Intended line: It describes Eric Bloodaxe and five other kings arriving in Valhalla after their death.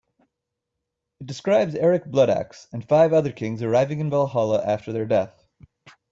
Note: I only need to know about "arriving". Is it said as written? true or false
true